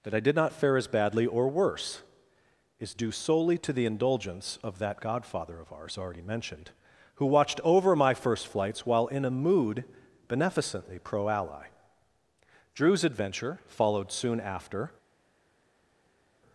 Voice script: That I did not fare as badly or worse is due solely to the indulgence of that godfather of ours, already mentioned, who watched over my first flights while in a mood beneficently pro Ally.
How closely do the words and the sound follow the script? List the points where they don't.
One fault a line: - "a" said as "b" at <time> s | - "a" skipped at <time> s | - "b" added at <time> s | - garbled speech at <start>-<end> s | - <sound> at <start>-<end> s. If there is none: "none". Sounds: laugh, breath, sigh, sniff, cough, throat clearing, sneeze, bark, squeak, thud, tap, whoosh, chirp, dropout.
- "Drew's adventure followed soon after" added at 12.7 s